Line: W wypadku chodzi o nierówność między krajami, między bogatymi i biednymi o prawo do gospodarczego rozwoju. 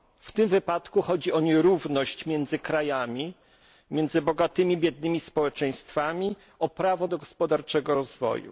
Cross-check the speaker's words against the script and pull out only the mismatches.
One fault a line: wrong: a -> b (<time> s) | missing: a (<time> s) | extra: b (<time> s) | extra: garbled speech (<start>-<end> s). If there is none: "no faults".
extra: tym (0.3 s)
extra: społeczeństwami (5.2 s)